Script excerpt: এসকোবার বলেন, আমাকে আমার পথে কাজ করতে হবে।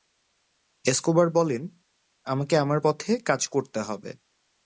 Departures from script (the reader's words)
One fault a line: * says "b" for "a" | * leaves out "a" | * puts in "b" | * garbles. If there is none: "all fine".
all fine